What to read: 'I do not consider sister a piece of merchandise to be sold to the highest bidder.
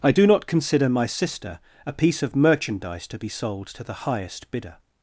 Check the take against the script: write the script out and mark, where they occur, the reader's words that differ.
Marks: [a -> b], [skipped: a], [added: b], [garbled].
'I do not consider [added: my] sister a piece of merchandise to be sold to the highest bidder.